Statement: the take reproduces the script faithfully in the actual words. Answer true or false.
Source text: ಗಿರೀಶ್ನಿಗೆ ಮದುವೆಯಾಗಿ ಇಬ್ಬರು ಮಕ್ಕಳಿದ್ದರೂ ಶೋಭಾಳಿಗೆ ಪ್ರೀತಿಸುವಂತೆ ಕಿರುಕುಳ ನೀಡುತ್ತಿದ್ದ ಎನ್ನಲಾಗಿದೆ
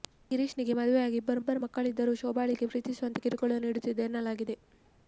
false